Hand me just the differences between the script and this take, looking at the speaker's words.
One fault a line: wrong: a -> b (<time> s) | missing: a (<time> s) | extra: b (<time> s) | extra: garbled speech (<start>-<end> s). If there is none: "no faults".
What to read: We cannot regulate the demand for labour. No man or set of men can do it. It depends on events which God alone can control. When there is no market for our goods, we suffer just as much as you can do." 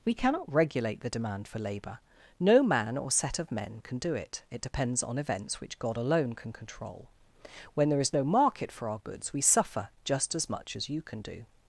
no faults